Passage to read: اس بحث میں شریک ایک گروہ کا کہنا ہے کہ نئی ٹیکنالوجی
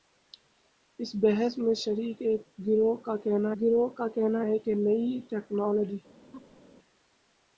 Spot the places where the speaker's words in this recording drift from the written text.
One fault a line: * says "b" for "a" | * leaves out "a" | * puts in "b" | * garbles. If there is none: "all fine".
* puts in "گروہ کا کہنا"